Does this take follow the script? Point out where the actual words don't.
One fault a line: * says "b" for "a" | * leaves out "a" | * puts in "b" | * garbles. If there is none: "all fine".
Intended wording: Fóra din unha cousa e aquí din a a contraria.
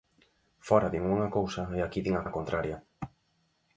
all fine